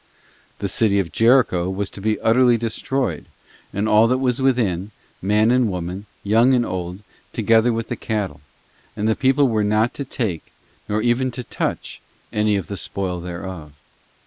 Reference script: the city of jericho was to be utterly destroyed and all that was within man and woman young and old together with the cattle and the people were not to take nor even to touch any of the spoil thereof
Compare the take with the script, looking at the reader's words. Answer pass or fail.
pass